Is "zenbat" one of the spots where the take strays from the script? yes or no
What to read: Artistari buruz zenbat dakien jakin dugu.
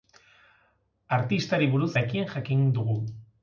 yes